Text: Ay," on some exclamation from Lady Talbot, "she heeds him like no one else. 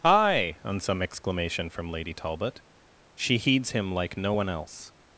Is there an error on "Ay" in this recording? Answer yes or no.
yes